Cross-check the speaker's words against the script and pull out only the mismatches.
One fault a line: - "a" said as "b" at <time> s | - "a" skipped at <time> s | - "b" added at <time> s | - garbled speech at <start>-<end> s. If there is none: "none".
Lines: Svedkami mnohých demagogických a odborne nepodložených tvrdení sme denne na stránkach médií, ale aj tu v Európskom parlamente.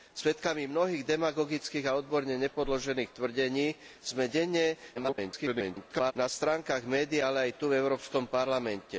- garbled speech at 4.9-6.1 s